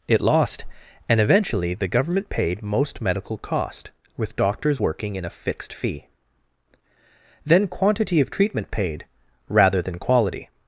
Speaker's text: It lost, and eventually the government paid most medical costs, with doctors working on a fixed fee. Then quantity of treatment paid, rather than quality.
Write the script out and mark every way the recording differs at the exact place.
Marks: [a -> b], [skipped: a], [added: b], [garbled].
It lost, and eventually the government paid most medical [costs, -> cost] with doctors working [on -> in] a fixed fee. Then quantity of treatment paid, rather than quality.